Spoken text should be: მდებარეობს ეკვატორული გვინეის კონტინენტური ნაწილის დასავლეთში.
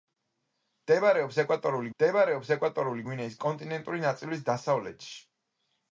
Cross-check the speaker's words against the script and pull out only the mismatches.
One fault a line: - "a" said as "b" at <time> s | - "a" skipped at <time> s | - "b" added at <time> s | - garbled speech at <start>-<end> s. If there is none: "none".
- "მდებარეობს ეკვატორული" added at 2.0 s